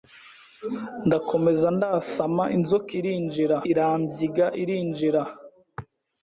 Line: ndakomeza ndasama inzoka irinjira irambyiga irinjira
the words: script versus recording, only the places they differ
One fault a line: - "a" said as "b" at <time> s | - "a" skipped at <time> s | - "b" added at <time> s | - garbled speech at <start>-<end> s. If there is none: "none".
none